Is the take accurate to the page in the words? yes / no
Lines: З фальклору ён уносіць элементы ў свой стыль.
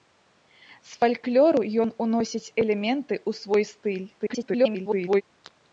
no